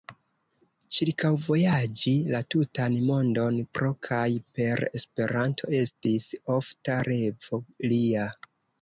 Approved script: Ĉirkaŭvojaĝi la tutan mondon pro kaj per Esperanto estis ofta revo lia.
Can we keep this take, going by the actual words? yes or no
yes